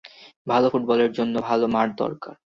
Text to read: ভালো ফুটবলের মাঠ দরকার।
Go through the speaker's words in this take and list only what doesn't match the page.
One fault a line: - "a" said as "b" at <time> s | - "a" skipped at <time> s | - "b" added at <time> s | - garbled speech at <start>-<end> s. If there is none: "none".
- "জন্য ভালো" added at 1.1 s